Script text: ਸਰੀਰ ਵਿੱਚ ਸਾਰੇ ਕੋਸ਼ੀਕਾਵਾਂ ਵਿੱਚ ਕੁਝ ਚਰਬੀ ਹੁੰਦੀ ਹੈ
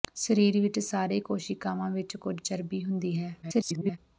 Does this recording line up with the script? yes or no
no